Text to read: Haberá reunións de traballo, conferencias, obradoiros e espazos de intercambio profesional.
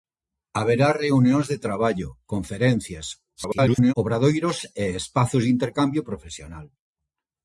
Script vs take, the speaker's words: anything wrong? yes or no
yes